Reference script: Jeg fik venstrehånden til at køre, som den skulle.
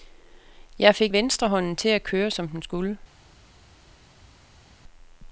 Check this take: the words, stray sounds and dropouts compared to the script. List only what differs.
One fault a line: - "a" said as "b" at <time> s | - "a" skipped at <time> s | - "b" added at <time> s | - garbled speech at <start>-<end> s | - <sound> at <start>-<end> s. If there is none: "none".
none